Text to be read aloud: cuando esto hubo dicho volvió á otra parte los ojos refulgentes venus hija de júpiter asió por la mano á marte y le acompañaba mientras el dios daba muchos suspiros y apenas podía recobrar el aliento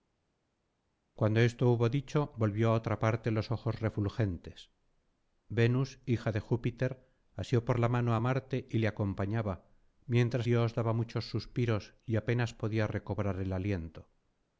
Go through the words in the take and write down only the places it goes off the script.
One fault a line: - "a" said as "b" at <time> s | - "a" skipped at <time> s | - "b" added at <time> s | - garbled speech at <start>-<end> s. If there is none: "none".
- "el" skipped at 10.5 s